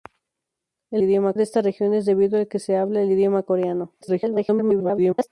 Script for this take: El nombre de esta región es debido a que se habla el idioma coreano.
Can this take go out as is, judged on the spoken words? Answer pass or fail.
fail